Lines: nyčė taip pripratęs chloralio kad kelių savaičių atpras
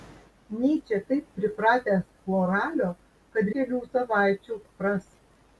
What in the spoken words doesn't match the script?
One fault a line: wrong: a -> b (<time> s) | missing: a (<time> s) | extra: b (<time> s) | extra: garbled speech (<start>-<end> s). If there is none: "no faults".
no faults